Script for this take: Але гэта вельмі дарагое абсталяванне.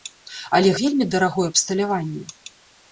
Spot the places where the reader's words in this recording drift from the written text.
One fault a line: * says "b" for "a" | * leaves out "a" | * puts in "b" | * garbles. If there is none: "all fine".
* leaves out "гэта"